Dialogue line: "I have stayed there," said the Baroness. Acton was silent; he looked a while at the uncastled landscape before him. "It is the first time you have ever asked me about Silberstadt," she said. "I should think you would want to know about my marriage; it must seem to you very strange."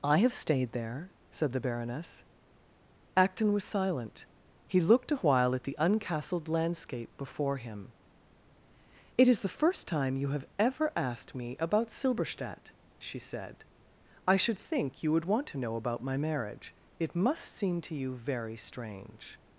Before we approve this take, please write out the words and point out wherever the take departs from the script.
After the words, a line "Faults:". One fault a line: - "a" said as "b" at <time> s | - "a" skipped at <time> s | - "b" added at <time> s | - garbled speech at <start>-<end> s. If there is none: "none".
"I have stayed there," said the Baroness. Acton was silent; he looked a while at the uncastled landscape before him. "It is the first time you have ever asked me about Silberstadt," she said. "I should think you would want to know about my marriage; it must seem to you very strange."
Faults:
none